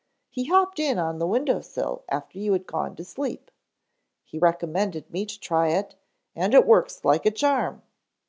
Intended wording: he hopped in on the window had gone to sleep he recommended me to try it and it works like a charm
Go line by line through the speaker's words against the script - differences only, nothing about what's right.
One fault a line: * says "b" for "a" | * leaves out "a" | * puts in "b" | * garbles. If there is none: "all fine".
* puts in "sill after you"